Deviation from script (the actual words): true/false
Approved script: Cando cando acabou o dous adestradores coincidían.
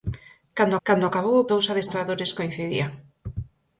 false